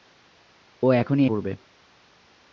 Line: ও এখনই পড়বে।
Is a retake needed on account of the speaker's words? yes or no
no